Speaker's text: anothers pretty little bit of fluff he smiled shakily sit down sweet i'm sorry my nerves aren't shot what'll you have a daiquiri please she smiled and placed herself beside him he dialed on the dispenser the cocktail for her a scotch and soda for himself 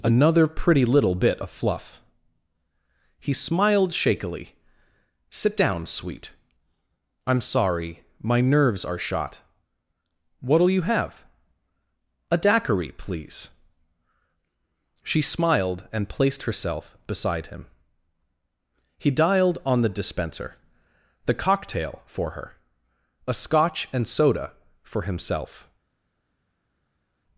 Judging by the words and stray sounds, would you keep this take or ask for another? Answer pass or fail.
fail